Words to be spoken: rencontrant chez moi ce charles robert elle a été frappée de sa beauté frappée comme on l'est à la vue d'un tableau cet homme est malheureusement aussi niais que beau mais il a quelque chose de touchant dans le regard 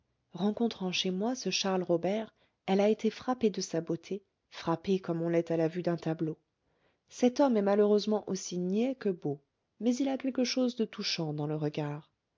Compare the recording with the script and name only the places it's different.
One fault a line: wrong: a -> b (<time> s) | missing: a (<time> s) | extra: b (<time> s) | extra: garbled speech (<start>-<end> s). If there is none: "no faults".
no faults